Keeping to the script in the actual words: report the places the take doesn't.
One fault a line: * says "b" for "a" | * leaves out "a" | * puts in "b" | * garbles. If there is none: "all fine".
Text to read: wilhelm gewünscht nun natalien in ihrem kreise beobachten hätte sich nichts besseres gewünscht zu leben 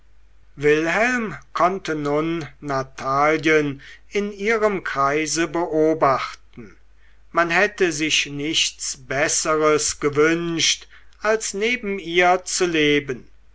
* says "konnte" for "gewünscht"
* puts in "man"
* puts in "als neben ihr"